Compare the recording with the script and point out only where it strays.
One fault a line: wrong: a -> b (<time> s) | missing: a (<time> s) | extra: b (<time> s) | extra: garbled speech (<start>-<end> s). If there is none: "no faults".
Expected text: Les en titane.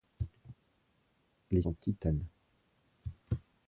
no faults